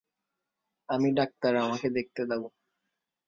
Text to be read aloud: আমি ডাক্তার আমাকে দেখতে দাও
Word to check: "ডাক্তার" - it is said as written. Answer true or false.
true